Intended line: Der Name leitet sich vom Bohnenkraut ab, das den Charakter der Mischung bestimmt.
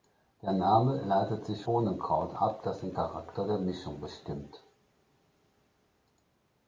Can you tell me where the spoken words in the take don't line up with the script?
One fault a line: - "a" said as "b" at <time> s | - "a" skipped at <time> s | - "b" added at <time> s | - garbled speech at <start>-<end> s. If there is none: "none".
- "vom" skipped at 1.6 s